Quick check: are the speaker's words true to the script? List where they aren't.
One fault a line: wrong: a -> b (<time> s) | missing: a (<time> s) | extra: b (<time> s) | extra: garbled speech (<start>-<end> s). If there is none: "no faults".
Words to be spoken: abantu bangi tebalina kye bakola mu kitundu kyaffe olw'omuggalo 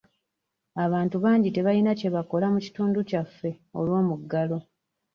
no faults